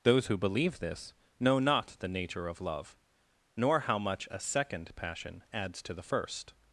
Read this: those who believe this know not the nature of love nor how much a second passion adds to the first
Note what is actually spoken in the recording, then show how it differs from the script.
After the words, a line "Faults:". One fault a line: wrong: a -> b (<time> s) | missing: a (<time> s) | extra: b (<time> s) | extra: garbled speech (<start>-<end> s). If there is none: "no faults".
those who believe this know not the nature of love nor how much a second passion adds to the first
Faults:
no faults